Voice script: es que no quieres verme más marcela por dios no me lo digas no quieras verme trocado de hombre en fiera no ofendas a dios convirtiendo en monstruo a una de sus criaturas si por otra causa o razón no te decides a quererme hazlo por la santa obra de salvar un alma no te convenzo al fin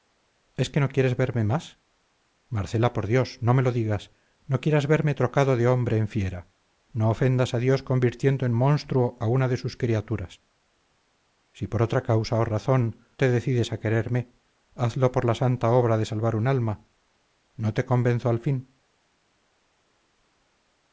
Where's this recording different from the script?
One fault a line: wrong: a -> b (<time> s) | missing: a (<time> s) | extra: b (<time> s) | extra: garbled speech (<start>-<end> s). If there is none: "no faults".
missing: no (13.0 s)